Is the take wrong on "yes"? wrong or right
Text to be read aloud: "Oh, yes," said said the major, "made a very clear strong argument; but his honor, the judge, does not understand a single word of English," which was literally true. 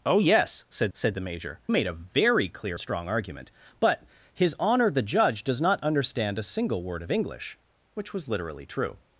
right